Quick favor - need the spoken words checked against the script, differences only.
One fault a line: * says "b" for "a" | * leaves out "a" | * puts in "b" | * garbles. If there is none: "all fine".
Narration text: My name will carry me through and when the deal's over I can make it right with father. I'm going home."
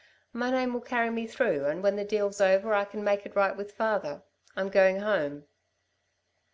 all fine